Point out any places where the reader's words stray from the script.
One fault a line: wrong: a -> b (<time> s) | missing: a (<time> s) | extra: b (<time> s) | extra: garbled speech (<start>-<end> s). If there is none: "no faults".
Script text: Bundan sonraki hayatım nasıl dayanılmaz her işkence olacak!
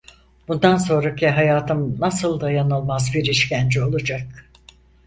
wrong: her -> bir (3.1 s)